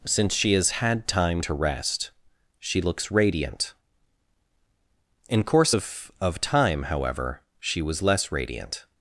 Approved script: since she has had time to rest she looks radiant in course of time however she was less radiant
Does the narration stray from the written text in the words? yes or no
yes